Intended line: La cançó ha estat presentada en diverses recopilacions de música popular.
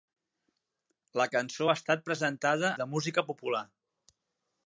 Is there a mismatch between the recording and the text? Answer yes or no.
yes